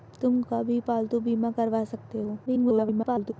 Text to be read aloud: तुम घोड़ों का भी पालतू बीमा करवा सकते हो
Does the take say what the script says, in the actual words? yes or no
no